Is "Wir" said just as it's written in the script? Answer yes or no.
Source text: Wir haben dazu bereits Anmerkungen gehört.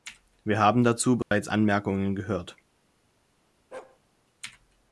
yes